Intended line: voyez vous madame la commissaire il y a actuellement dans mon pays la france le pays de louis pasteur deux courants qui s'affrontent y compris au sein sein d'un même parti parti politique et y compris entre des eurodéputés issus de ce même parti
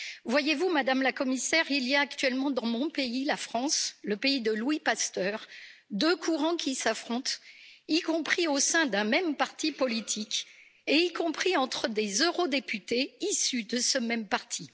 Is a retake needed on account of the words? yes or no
yes